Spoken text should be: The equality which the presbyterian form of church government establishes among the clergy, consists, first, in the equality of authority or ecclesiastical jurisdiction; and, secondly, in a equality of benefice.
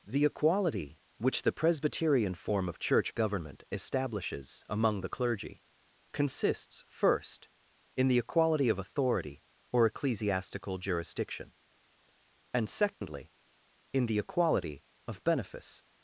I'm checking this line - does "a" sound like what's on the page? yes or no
no